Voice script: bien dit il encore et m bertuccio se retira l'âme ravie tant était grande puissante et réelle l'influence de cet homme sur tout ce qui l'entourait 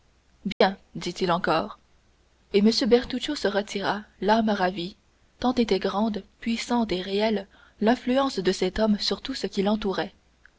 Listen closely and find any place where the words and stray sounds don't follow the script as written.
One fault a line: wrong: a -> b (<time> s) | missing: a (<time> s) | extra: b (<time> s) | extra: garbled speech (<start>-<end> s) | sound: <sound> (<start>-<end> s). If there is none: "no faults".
sound: dropout (0.5-0.6 s)